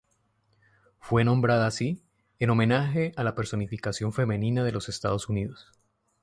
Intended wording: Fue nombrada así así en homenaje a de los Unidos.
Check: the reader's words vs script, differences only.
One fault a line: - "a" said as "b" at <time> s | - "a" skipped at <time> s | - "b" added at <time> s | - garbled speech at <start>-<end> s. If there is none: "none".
- "así" skipped at 2.0 s
- "la personificación femenina" added at 3.2 s
- "Estados" added at 4.9 s